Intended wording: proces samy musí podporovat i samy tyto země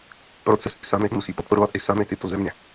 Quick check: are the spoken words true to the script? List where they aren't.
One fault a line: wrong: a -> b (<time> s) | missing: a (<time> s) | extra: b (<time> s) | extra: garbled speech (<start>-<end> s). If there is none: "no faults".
no faults